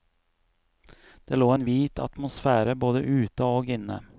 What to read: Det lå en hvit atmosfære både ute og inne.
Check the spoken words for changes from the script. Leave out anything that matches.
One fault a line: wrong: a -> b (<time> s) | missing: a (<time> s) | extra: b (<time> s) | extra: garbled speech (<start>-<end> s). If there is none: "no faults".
no faults